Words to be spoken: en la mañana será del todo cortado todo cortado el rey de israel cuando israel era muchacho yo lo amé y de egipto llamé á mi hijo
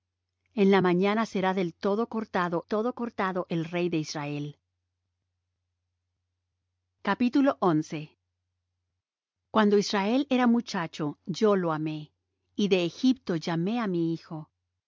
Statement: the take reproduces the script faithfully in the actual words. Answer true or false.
true